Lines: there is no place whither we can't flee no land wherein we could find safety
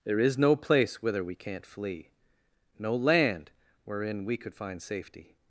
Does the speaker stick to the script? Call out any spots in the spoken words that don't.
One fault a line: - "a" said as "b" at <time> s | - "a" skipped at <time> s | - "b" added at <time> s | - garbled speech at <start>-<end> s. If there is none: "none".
none